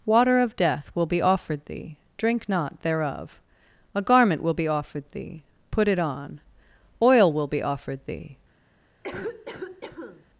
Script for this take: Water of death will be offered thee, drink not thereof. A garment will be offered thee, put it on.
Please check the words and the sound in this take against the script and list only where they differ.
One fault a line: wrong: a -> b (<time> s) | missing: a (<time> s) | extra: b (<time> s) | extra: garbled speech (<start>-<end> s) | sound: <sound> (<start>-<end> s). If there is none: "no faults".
extra: Oil will be offered thee (7.0 s)
sound: cough (9.0-10.3 s)